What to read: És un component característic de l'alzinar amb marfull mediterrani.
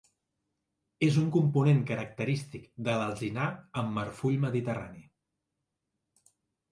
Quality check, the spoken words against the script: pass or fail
pass